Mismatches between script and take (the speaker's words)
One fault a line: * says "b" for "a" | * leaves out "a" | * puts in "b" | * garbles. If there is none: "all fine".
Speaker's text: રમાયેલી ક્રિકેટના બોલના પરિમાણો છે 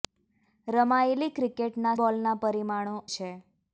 all fine